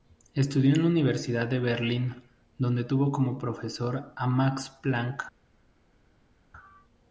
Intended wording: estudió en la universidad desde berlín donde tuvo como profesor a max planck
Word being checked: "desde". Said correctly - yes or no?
no